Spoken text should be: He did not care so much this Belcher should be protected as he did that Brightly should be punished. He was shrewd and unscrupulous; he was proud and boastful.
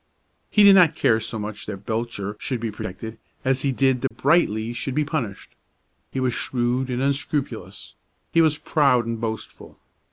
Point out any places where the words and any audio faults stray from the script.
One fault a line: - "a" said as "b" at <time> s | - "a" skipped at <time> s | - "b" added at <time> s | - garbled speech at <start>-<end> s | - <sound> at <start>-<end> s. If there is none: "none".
- "this" said as "that" at 1.6 s
- dropout at 4.1-4.1 s